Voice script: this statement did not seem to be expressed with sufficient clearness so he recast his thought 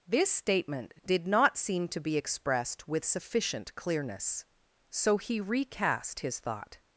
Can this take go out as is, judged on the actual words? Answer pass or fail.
pass